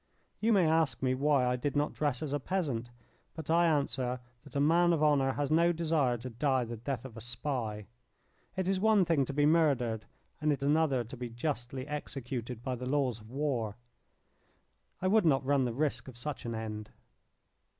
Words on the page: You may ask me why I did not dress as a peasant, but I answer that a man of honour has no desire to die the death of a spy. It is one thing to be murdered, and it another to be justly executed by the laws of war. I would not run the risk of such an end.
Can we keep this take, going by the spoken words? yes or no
yes